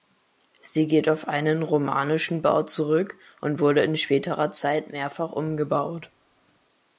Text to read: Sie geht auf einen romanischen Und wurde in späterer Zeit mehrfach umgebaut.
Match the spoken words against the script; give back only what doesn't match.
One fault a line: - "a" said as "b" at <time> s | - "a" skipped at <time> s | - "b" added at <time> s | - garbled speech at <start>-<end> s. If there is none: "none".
- "Bau zurück" added at 2.4 s